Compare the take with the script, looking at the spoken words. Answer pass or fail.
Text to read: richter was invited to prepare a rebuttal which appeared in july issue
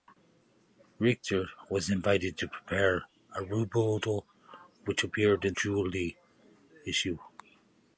pass